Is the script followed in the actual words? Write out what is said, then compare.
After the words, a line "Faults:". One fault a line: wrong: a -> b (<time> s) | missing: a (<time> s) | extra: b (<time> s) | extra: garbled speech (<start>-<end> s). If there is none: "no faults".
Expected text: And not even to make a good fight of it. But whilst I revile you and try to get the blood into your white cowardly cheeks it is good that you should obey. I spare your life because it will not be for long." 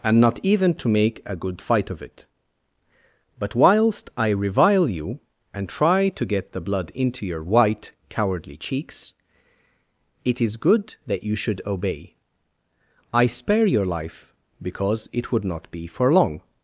And not even to make a good fight of it. But whilst I revile you and try to get the blood into your white cowardly cheeks it is good that you should obey. I spare your life because it would not be for long."
Faults:
wrong: will -> would (15.3 s)